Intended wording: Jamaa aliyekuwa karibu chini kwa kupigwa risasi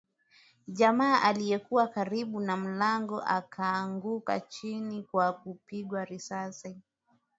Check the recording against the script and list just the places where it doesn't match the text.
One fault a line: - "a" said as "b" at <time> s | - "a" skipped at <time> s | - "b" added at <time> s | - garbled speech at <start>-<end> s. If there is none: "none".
- "na mlango akaanguka" added at 2.4 s